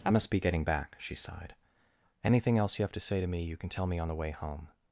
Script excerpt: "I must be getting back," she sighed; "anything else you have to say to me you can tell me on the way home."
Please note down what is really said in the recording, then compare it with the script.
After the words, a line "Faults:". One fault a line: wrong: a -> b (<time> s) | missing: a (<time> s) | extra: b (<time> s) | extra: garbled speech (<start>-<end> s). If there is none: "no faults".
"I must be getting back," she sighed; "anything else you have to say to me you can tell me on the way home."
Faults:
no faults